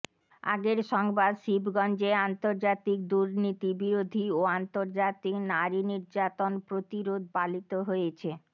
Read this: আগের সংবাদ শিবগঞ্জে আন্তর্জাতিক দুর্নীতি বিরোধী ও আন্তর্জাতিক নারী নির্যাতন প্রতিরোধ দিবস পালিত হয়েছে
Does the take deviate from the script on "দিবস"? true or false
true